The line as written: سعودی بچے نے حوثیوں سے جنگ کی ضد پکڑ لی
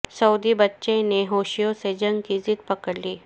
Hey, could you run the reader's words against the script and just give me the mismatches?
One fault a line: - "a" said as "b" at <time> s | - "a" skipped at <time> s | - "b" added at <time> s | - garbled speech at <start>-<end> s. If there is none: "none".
none